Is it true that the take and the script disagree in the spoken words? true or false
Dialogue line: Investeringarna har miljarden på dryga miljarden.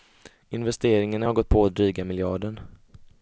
true